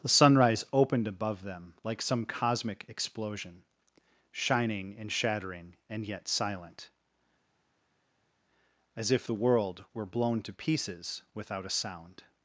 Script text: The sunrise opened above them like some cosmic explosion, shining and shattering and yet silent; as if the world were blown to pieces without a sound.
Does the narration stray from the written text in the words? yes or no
no